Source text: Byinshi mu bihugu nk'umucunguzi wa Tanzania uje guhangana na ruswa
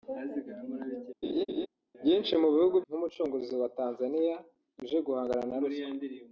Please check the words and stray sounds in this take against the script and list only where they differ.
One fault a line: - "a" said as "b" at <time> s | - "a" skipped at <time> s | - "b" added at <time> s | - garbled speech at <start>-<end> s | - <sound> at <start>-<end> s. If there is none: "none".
- laugh at 1.2-1.7 s